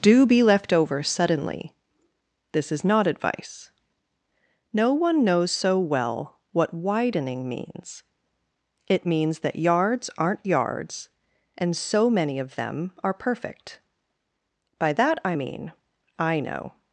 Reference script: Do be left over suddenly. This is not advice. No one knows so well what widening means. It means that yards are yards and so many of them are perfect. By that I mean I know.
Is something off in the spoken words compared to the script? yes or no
yes